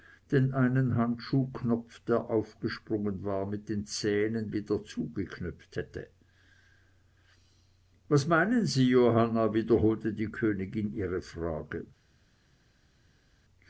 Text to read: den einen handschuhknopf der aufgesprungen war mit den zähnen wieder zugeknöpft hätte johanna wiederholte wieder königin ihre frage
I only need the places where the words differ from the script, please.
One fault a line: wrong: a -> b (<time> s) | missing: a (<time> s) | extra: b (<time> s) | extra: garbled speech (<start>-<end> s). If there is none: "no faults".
extra: was meinen sie (8.1 s)
wrong: wieder -> die (10.1 s)